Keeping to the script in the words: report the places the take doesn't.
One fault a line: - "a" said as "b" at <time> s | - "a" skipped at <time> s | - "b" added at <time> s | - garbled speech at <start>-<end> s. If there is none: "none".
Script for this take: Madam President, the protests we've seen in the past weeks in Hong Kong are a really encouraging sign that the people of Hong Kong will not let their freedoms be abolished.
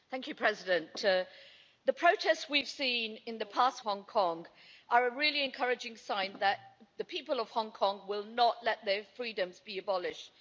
- "weeks in" skipped at 3.9 s